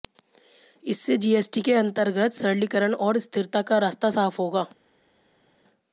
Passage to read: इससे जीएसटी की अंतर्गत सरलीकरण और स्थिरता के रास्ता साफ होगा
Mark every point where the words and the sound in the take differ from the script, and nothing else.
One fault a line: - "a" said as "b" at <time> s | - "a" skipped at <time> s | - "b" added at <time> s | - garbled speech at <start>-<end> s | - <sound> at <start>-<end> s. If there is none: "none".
- "की" said as "के" at 1.6 s
- "के" said as "का" at 3.6 s